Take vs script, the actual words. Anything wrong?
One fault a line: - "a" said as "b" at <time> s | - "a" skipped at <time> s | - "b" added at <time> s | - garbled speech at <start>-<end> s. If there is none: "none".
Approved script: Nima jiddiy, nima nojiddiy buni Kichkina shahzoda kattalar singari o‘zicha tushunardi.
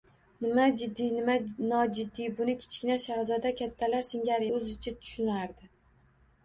none